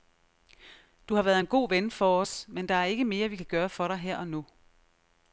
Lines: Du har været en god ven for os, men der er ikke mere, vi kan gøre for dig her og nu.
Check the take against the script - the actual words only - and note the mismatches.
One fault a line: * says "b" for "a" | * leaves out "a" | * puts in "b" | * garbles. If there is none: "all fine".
all fine